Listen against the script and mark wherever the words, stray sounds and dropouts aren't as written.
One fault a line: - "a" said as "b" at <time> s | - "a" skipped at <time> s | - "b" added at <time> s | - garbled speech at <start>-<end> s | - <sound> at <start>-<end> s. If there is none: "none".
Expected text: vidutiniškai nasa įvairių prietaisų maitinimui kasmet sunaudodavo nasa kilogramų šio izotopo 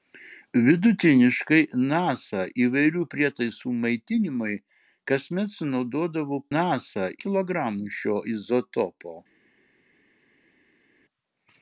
none